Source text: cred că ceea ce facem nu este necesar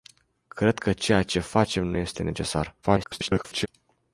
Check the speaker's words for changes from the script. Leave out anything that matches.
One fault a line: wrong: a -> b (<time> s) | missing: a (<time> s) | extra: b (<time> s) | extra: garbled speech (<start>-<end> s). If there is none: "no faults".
extra: garbled speech (2.8-3.7 s)